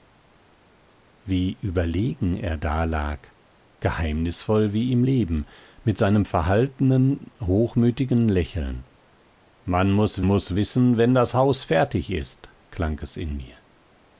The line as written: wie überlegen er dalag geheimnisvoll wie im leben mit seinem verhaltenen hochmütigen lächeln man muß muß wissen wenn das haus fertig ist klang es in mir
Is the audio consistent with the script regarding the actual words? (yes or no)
yes